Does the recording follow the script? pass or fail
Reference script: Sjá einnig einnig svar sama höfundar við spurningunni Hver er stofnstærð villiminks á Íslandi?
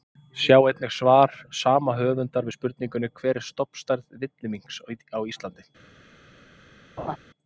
fail